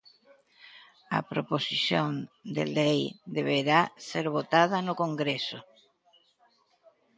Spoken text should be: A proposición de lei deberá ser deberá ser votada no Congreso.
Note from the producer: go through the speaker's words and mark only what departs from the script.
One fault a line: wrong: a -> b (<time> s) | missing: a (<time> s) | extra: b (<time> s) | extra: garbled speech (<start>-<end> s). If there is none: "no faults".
missing: deberá ser (4.3 s)